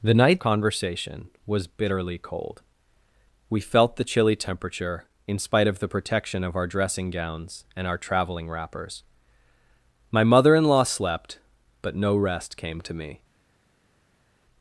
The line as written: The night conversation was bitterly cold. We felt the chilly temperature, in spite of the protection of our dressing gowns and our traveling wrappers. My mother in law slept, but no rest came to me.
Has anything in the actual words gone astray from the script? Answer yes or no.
no